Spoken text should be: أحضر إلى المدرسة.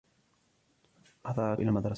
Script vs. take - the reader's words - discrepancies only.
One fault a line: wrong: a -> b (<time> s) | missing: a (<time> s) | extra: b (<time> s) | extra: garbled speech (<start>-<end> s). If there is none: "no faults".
no faults